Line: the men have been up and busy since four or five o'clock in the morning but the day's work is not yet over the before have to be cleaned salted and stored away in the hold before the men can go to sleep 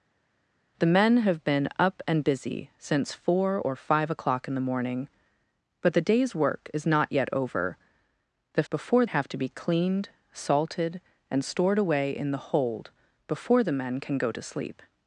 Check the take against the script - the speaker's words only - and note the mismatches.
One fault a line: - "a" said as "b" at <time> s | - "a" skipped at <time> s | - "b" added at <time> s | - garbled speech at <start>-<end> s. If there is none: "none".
none